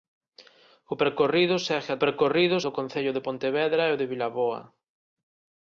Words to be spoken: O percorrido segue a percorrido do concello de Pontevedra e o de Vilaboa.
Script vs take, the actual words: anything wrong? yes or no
no